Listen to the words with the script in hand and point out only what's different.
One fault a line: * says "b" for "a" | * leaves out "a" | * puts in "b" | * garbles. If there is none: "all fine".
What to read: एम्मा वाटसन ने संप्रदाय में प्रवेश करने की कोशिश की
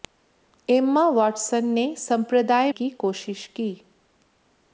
* leaves out "में प्रवेश करने"